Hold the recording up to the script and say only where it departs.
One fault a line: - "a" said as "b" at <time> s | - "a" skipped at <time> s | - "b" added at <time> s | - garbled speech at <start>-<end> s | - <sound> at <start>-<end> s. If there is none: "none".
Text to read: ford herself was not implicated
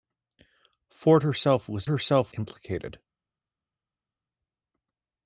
- "not" said as "herself" at 1.9 s